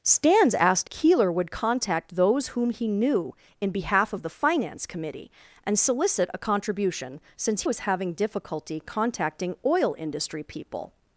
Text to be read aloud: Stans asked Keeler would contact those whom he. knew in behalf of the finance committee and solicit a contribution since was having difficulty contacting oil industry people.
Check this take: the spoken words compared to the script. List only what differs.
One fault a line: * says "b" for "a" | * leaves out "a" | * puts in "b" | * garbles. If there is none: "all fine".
all fine